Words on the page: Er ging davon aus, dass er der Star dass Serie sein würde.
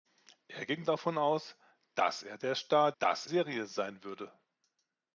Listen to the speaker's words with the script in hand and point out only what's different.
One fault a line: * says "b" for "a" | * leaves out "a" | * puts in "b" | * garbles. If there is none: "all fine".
all fine